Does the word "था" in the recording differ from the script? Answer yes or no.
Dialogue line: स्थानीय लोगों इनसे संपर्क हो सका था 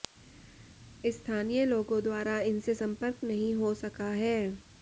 yes